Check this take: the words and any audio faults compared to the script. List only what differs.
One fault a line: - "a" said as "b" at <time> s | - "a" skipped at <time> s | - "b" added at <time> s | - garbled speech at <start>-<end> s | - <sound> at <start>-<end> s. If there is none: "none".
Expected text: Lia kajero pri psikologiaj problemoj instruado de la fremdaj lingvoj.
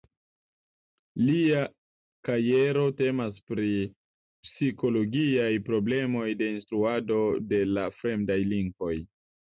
- "temas" added at 3.0 s
- "de" added at 6.4 s